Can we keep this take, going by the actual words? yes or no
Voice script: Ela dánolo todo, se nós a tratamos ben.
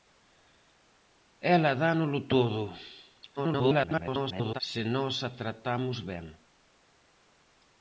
no